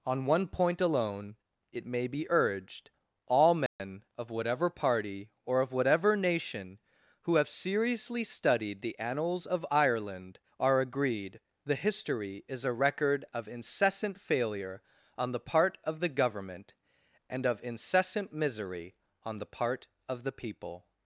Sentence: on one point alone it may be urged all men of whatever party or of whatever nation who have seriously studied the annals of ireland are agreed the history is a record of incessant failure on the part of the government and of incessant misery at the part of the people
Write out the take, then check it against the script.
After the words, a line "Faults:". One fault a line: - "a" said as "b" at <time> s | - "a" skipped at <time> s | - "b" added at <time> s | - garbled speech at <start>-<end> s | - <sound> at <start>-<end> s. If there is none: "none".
on one point alone it may be urged all men of whatever party or of whatever nation who have seriously studied the annals of ireland are agreed the history is a record of incessant failure on the part of the government and of incessant misery on the part of the people
Faults:
- dropout at 3.7-3.8 s
- "at" said as "on" at 19.2 s